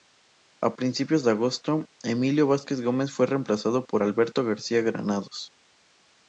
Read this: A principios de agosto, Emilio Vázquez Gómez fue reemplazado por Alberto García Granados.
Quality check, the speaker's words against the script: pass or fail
pass